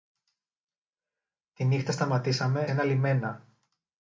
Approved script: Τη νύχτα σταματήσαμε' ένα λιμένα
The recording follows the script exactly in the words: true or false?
true